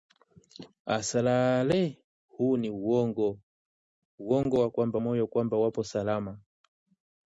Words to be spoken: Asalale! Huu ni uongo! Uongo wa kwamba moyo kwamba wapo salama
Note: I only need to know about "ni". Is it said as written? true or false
true